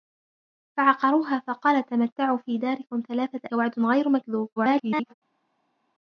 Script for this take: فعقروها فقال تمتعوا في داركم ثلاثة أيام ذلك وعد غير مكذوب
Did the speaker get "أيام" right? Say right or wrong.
wrong